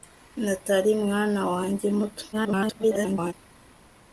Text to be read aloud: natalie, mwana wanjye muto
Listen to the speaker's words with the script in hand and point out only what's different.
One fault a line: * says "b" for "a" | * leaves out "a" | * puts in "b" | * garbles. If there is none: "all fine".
* garbles